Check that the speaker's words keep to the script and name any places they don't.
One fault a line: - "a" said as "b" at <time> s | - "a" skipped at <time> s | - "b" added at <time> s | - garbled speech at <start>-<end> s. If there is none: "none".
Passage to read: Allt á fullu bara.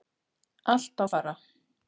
- "fullu" skipped at 1.0 s